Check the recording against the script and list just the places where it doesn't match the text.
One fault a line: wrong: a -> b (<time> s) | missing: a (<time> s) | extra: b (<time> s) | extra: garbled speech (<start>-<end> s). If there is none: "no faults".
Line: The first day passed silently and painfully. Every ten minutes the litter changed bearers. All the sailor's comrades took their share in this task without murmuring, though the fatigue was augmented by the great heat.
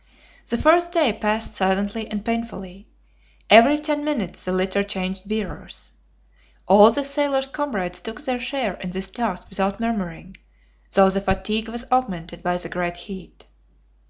no faults